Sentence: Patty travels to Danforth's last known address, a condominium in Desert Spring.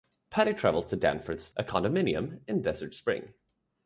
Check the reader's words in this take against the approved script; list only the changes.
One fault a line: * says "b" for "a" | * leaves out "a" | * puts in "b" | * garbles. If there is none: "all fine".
* leaves out "last known address"